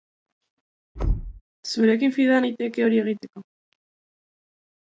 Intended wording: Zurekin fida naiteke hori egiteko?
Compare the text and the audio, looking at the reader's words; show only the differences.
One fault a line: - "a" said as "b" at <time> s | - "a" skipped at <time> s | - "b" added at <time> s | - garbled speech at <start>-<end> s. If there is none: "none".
none